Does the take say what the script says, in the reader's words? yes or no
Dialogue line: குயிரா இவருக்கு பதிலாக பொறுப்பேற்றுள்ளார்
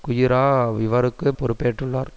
no